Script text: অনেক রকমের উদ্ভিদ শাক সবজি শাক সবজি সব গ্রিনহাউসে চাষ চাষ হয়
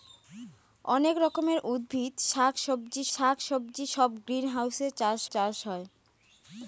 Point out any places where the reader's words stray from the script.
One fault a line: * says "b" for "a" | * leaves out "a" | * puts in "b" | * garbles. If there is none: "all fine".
all fine